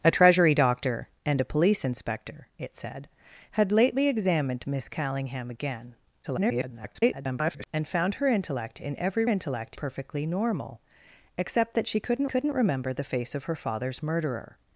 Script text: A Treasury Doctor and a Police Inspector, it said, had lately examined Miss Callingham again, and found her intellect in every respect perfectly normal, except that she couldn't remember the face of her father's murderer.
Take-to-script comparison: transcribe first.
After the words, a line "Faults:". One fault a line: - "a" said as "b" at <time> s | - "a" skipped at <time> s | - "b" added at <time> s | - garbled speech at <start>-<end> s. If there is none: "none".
A Treasury Doctor and a Police Inspector, it said, had lately examined Miss Callingham again, [garbled] and found her intellect in every intellect perfectly normal, except that she couldn't couldn't remember the face of her father's murderer.
Faults:
- garbled speech at 6.2-7.7 s
- "respect" said as "intellect" at 9.3 s
- "couldn't" added at 12.2 s